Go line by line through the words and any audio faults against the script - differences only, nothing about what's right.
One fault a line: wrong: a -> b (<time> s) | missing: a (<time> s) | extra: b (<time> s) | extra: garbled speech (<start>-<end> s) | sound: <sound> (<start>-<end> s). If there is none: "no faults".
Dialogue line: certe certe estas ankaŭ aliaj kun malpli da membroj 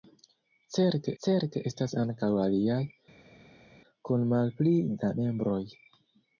no faults